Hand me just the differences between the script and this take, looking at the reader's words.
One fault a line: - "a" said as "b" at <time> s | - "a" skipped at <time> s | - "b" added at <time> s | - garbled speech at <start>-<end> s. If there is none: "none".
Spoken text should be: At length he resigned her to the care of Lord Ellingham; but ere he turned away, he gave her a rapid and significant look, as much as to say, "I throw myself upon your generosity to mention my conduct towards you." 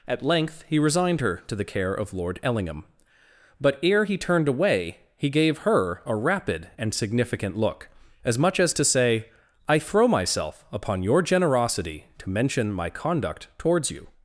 none